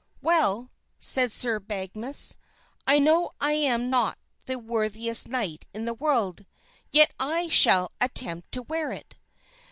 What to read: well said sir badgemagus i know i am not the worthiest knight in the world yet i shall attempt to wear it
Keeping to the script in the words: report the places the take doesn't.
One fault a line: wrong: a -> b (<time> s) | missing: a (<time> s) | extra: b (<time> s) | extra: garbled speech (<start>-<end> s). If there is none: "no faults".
no faults